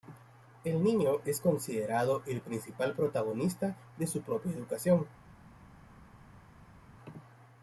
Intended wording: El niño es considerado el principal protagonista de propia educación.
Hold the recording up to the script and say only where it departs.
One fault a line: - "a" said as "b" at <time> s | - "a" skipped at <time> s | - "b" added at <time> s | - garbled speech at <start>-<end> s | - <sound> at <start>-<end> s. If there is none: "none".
- "su" added at 4.1 s